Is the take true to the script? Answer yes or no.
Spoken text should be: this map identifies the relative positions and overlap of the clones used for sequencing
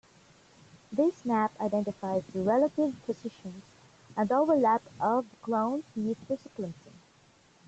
yes